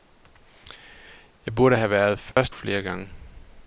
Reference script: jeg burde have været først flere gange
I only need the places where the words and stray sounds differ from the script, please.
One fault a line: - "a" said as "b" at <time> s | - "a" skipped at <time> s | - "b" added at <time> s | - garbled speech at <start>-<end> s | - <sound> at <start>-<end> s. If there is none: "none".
- dropout at 2.3-2.4 s